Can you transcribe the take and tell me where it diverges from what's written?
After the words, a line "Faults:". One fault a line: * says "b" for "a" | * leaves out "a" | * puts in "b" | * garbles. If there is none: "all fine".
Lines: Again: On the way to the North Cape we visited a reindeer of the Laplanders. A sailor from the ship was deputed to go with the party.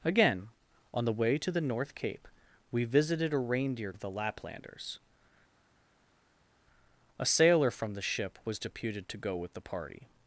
Again: On the way to the North Cape we visited a reindeer of the Laplanders. A sailor from the ship was deputed to go with the party.
Faults:
all fine